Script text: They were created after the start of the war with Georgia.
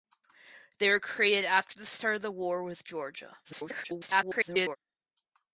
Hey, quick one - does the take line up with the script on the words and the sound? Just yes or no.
no